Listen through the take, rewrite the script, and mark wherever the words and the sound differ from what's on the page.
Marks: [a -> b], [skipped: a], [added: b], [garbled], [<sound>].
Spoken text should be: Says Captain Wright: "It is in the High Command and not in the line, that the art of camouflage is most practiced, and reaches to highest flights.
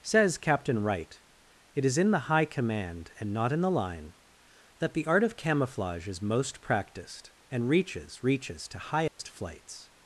Says Captain Wright: "It is in the High Command and not in the line, that the art of camouflage is most practiced, and reaches [added: reaches] to highest [dropout] flights.